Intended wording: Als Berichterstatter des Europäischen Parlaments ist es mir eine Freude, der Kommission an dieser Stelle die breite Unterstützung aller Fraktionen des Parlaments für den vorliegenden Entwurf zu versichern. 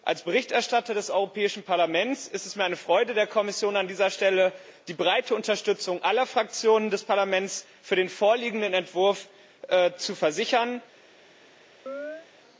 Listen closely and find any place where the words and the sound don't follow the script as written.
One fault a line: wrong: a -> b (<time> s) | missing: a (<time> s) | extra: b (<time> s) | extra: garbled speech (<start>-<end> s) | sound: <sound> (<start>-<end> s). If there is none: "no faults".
sound: chirp (11.9-12.3 s)